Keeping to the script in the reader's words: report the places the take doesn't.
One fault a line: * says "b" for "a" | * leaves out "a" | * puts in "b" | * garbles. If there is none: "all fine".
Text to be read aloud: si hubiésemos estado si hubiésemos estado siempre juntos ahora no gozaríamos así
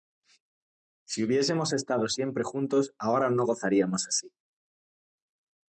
* leaves out "si hubiésemos estado"